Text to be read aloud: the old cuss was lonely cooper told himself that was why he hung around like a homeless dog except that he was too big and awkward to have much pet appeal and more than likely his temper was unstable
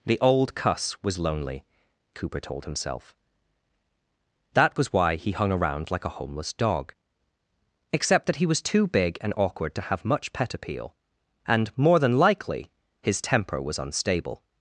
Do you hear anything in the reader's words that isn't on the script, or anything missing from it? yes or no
no